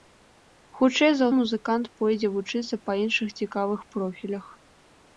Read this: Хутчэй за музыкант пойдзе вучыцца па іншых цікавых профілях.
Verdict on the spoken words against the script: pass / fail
pass